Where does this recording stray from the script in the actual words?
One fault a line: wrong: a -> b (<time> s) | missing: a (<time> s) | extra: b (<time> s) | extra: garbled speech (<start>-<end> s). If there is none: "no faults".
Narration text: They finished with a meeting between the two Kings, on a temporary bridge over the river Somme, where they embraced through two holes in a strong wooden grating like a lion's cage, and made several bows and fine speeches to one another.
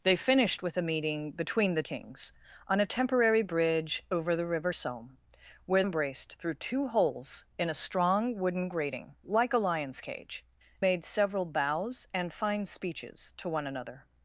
missing: two (1.9 s)
missing: they (5.8 s)
missing: and (10.4 s)